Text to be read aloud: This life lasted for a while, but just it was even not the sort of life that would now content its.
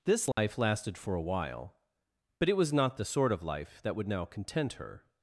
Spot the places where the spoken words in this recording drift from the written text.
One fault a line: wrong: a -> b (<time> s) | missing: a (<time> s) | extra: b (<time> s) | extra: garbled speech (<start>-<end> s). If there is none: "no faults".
missing: just (2.5 s)
missing: even (2.7 s)
wrong: its -> her (4.7 s)